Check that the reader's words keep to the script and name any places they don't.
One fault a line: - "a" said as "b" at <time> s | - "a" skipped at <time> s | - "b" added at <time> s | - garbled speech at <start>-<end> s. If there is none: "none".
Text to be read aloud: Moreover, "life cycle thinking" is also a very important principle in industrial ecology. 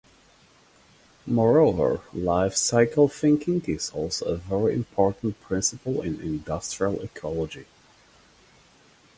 none